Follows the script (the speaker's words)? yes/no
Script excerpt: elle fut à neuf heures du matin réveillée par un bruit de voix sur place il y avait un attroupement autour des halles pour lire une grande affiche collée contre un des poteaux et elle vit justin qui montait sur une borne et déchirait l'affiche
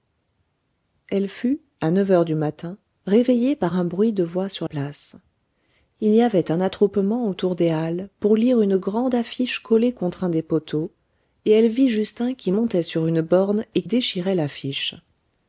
yes